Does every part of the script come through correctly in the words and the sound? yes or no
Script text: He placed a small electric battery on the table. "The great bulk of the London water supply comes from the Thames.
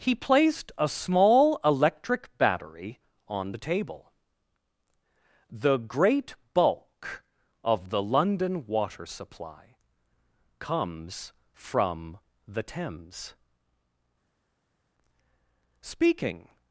no